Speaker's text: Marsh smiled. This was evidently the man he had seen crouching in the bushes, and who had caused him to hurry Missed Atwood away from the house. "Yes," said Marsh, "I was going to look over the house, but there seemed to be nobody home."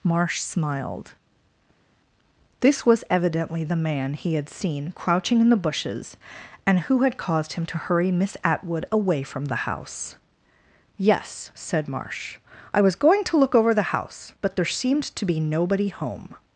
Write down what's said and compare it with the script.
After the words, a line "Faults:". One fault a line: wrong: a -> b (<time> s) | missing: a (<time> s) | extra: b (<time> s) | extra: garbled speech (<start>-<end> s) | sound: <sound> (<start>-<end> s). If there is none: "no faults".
Marsh smiled. This was evidently the man he had seen crouching in the bushes, and who had caused him to hurry Miss Atwood away from the house. "Yes," said Marsh, "I was going to look over the house, but there seemed to be nobody home."
Faults:
wrong: Missed -> Miss (8.1 s)